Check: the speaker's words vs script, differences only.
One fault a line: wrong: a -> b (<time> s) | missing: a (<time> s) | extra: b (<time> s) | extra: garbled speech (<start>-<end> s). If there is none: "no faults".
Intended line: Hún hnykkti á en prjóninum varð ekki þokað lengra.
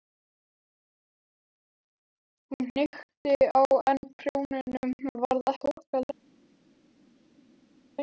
missing: ekki (5.5 s)